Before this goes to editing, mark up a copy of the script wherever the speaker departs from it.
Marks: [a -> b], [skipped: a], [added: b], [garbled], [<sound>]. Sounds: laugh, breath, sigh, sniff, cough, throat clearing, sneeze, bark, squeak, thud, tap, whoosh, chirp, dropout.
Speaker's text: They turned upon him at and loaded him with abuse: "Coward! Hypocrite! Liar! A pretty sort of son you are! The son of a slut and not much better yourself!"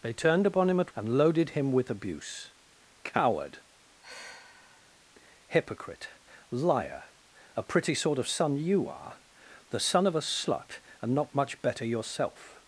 They turned upon him at and loaded him with abuse: "Coward! [sigh] Hypocrite! Liar! A pretty sort of son you are! The son of a slut and not much better yourself!"